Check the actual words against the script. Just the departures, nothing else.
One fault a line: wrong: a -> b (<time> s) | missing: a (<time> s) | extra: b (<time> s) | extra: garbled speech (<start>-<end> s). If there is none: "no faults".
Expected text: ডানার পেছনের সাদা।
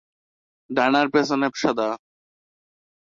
no faults